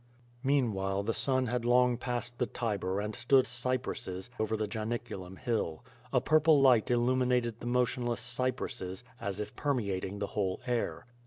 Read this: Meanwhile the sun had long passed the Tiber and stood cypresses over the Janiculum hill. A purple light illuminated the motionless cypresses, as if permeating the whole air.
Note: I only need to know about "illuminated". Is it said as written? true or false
true